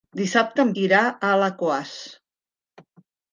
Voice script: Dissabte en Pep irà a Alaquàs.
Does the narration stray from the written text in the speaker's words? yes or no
yes